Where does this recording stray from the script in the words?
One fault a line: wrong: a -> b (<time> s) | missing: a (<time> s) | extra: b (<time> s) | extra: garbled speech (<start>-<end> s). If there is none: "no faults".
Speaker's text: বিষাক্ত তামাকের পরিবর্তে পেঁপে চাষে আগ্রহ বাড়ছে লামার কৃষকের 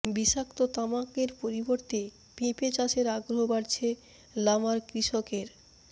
no faults